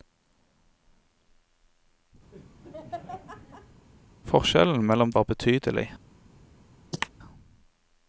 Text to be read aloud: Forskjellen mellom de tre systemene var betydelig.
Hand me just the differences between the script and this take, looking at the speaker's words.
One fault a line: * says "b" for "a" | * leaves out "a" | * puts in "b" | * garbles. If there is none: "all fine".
* leaves out "de tre systemene"